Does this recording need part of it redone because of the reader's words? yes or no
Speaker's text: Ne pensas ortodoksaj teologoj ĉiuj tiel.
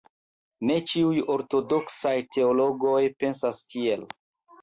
yes